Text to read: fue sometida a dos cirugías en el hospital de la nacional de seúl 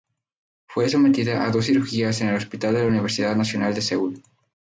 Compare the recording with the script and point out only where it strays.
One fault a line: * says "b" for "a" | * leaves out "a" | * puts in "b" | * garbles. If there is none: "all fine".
* puts in "universidad"